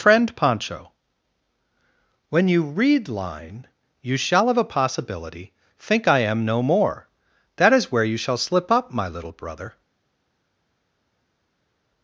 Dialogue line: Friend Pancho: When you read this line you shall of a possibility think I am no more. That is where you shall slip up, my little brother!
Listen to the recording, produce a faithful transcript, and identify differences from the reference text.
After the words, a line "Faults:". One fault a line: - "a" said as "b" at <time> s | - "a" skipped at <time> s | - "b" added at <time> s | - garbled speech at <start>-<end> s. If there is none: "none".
Friend Pancho: When you read line you shall of a possibility think I am no more. That is where you shall slip up, my little brother!
Faults:
- "this" skipped at 3.1 s